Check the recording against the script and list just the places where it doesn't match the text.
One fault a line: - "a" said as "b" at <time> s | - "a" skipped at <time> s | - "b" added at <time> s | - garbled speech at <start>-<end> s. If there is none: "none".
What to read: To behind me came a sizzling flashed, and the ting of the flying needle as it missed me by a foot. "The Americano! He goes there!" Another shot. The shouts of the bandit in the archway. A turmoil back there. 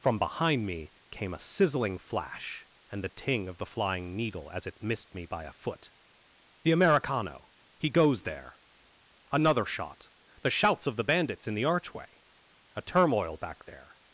- "To" said as "From" at 0.0 s
- "flashed" said as "flash" at 2.0 s
- "bandit" said as "bandits" at 11.0 s